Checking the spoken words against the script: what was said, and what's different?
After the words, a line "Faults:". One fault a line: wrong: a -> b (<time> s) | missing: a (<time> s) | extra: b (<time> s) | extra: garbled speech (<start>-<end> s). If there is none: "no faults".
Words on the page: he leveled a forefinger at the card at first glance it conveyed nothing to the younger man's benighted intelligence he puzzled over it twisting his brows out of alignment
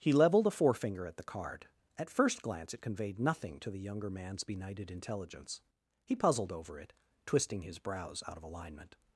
he leveled a forefinger at the card at first glance it conveyed nothing to the younger man's benighted intelligence he puzzled over it twisting his brows out of alignment
Faults:
no faults